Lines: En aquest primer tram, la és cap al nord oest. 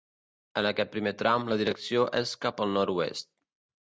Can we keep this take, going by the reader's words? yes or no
no